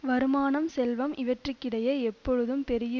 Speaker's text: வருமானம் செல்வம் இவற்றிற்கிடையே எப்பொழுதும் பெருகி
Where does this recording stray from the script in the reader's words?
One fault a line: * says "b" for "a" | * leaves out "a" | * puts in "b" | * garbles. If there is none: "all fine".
all fine